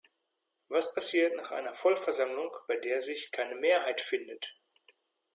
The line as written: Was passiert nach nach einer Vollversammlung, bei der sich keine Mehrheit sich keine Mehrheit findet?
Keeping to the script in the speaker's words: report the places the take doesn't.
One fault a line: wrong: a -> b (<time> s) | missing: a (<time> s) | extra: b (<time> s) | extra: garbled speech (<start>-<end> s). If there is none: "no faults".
missing: nach (1.5 s)
missing: sich keine Mehrheit (4.0 s)